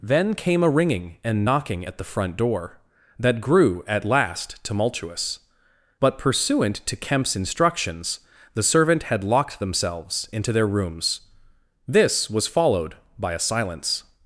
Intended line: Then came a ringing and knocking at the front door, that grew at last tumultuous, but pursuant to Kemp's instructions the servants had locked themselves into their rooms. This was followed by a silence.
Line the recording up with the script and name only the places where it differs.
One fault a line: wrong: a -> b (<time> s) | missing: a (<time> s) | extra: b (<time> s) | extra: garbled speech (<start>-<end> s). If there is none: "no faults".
wrong: servants -> servant (8.6 s)